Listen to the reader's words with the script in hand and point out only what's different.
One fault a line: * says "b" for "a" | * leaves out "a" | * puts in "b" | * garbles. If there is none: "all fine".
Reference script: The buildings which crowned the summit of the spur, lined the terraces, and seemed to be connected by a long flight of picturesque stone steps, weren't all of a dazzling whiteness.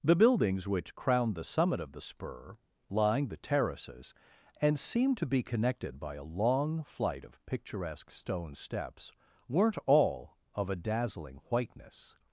all fine